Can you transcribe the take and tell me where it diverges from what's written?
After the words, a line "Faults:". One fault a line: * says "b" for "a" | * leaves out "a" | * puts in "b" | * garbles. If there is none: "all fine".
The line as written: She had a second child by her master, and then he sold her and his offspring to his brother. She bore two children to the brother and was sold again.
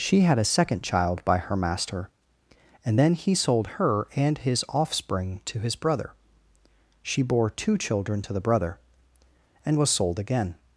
She had a second child by her master, and then he sold her and his offspring to his brother. She bore two children to the brother and was sold again.
Faults:
all fine